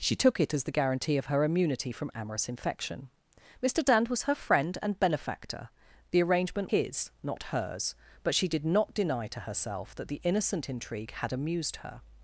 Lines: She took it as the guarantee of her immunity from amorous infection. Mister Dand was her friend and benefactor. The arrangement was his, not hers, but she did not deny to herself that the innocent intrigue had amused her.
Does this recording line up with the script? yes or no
no